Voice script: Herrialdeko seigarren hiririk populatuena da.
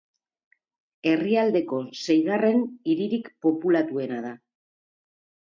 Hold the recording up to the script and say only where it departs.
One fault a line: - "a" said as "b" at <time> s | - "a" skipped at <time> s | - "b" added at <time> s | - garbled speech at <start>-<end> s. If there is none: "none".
none